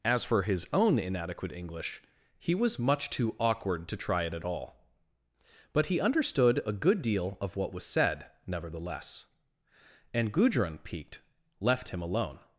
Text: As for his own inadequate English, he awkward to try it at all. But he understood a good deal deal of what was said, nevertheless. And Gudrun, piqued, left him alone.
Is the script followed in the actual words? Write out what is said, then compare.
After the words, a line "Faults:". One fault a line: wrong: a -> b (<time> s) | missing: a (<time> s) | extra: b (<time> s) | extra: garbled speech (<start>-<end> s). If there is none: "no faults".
As for his own inadequate English, he was much too awkward to try it at all. But he understood a good deal of what was said, nevertheless. And Gudrun, piqued, left him alone.
Faults:
extra: was much too (2.5 s)
missing: deal (7.4 s)